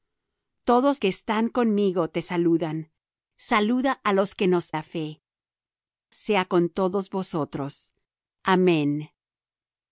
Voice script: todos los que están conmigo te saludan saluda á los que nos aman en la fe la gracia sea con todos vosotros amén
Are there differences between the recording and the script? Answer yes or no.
yes